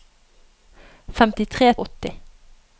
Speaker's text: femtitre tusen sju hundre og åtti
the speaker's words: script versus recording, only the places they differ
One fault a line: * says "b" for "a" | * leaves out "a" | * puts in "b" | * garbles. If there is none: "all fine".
* leaves out "tusen sju hundre"